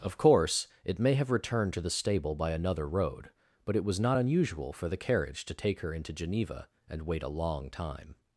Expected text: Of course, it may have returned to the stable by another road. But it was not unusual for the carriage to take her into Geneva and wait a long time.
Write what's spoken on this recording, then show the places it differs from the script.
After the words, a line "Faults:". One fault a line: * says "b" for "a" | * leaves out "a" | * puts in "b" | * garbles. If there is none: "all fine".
Of course, it may have returned to the stable by another road. But it was not unusual for the carriage to take her into Geneva and wait a long time.
Faults:
all fine